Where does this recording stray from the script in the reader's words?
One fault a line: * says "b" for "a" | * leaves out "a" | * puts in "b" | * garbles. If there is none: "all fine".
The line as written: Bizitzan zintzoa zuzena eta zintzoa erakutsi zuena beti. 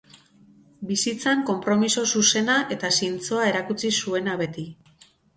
* says "konpromiso" for "zintzoa"